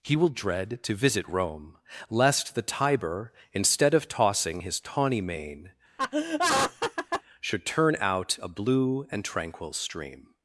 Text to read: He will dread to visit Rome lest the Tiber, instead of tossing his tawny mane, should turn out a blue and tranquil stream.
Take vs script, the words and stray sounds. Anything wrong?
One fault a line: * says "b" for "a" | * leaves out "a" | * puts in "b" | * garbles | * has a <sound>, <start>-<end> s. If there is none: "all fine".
* has a laugh, 6.0-7.2 s